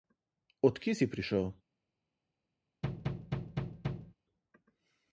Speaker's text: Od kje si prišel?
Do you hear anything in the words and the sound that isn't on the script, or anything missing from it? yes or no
yes